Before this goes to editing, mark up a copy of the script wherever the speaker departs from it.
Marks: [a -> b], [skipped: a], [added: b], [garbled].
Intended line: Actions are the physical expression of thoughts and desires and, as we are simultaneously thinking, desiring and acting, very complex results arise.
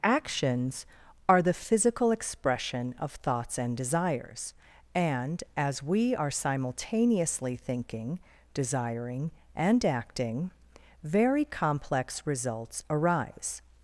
Actions are the physical expression of thoughts and desires and, as we are simultaneously thinking, desiring and acting, very complex results arise.